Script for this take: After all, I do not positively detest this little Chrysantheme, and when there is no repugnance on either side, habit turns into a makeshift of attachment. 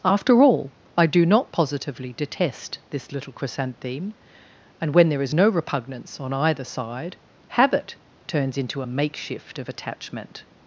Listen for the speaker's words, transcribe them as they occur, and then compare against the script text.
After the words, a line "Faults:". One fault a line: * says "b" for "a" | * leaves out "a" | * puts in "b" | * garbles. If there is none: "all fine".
After all, I do not positively detest this little Chrysantheme, and when there is no repugnance on either side, habit turns into a makeshift of attachment.
Faults:
all fine